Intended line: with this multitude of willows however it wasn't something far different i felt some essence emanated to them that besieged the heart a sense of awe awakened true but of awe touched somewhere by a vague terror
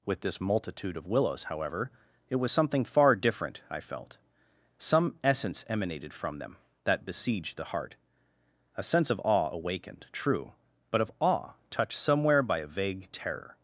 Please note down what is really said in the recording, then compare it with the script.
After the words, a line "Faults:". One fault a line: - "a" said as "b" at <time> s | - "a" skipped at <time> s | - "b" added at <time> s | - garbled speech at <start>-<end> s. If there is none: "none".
with this multitude of willows however it was something far different i felt some essence emanated from them that besieged the heart a sense of awe awakened true but of awe touched somewhere by a vague terror
Faults:
- "wasn't" said as "was" at 2.4 s
- "to" said as "from" at 6.1 s